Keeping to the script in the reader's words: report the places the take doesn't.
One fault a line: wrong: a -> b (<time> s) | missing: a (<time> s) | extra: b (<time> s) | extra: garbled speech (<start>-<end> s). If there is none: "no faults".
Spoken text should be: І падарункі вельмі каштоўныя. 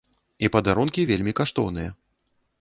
no faults